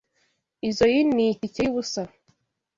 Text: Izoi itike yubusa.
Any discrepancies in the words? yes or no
yes